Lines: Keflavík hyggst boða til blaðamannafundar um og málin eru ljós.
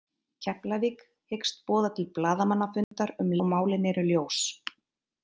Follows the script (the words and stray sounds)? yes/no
no